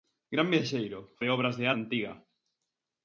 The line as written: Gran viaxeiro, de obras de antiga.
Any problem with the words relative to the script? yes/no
no